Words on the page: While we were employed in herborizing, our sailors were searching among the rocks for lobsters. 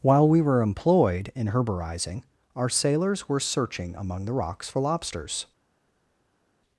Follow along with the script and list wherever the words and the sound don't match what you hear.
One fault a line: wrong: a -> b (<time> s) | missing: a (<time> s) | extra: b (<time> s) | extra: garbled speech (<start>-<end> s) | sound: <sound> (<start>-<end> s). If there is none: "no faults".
no faults